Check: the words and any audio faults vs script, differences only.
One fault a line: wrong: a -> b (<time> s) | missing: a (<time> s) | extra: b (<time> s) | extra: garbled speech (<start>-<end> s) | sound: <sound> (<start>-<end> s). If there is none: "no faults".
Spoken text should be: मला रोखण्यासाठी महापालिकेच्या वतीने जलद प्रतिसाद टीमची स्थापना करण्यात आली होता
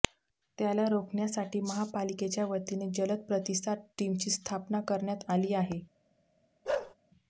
wrong: मला -> त्याला (0.6 s)
wrong: होता -> आहे (5.5 s)
sound: bark (6.6-6.9 s)